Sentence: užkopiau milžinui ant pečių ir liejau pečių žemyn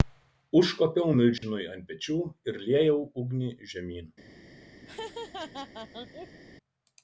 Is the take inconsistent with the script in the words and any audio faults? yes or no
yes